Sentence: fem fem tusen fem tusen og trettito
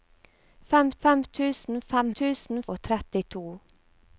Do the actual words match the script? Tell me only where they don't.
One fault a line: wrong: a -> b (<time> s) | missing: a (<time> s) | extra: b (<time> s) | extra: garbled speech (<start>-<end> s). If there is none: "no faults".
no faults